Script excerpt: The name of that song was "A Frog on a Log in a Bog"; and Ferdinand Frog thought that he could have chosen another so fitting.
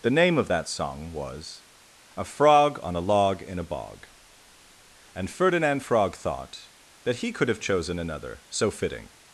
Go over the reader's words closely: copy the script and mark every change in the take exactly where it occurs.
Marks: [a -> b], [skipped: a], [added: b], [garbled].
The name of that song was "A Frog on a Log in a Bog"; and Ferdinand Frog thought that he could have chosen another so fitting.